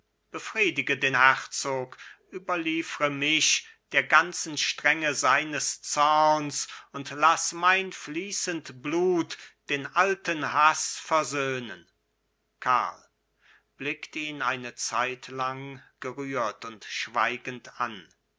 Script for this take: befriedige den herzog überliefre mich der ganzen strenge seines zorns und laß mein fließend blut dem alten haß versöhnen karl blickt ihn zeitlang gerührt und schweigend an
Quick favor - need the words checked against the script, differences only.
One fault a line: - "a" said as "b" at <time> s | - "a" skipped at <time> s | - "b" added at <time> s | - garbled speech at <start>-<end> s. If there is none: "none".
- "dem" said as "den" at 9.7 s
- "eine" added at 14.4 s